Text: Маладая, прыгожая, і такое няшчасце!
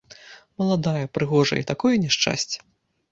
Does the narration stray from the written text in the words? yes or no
no